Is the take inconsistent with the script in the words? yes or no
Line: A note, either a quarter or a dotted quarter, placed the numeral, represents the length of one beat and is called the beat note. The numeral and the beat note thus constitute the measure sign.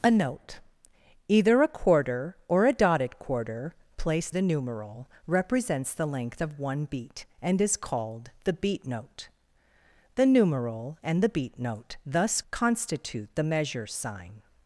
no